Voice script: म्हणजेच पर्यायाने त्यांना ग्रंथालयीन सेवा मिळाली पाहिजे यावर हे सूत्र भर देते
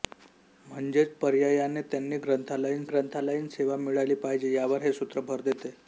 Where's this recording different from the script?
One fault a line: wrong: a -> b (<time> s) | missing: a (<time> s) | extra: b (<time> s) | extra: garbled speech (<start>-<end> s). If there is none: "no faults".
extra: ग्रंथालयीन (2.9 s)